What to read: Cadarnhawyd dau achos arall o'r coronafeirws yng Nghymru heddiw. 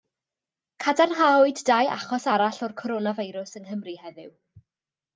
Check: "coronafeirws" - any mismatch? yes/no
no